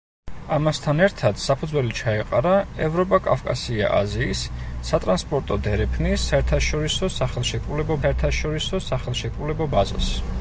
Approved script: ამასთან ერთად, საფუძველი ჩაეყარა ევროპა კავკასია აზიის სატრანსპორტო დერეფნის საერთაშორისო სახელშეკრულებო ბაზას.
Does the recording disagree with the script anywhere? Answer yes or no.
yes